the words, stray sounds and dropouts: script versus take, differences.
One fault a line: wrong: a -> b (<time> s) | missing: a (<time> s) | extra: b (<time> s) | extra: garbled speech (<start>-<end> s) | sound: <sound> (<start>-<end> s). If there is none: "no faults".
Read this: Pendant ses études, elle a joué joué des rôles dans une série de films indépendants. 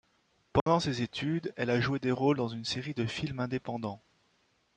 sound: dropout (0.6-0.7 s)
missing: joué (2.0 s)